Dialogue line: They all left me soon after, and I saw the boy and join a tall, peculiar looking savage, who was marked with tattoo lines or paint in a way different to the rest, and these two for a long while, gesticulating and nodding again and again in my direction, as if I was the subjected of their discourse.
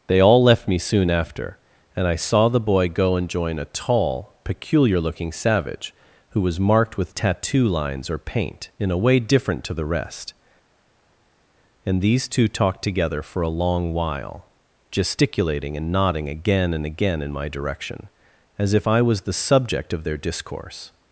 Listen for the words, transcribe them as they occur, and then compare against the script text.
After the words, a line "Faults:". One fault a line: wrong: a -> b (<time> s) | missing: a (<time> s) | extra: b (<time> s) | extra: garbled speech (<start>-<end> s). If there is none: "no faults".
They all left me soon after, and I saw the boy go and join a tall, peculiar looking savage, who was marked with tattoo lines or paint in a way different to the rest, and these two talked together for a long while, gesticulating and nodding again and again in my direction, as if I was the subject of their discourse.
Faults:
extra: go (2.9 s)
extra: talked together (12.5 s)
wrong: subjected -> subject (19.3 s)